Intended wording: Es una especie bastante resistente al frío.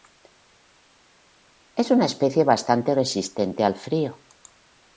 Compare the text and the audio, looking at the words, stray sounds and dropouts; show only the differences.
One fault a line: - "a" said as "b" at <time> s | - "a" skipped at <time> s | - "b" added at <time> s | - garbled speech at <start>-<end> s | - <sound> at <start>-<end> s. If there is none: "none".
none